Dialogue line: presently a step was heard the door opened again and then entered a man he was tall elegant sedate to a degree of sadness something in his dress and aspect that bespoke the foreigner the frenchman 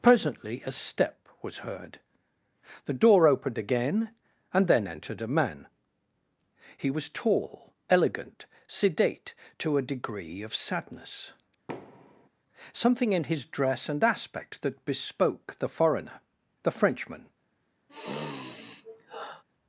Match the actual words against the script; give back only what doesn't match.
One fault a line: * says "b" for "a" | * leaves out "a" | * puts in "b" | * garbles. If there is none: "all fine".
all fine